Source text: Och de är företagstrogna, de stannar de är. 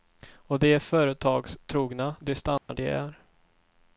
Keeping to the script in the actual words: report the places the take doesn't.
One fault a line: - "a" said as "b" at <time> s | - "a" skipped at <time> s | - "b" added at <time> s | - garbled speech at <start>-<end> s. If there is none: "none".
none